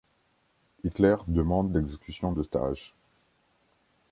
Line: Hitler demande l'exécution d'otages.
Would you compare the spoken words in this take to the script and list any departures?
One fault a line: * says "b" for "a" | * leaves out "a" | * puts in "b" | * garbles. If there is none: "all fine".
all fine